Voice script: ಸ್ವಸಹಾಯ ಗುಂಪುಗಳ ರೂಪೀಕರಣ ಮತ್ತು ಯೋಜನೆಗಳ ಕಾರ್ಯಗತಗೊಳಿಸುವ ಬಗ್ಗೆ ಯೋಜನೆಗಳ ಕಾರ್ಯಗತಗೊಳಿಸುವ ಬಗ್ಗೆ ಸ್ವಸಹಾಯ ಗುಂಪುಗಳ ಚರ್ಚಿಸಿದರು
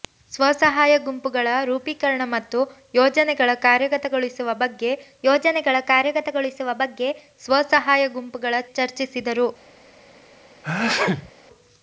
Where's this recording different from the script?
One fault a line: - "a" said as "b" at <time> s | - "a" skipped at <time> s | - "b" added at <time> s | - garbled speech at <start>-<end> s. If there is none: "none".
none